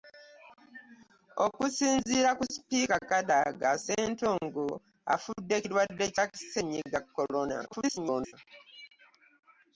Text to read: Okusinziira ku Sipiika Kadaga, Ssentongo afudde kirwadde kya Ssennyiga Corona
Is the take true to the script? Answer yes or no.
no